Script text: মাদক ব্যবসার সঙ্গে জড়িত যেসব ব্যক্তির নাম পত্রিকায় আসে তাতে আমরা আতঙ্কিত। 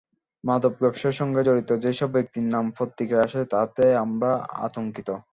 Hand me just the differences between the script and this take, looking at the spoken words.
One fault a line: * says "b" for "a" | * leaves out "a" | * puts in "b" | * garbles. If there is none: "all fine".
all fine